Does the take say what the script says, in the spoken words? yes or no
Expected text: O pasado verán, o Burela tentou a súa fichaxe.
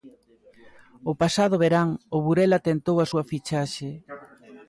yes